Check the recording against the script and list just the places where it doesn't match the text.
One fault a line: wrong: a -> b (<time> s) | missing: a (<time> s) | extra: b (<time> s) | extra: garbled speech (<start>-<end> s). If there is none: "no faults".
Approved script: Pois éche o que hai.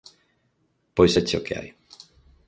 no faults